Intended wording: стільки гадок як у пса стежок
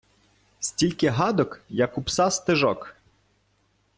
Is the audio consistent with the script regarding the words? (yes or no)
yes